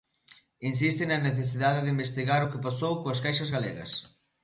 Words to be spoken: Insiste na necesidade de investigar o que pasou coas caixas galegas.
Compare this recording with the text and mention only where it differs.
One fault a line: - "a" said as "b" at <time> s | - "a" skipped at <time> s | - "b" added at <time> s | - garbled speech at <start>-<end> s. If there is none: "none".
none